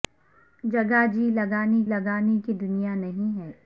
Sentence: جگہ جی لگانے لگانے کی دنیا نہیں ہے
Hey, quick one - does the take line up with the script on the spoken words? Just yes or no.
yes